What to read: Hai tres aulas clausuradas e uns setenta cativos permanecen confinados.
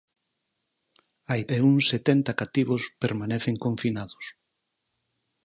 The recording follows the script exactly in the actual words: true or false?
false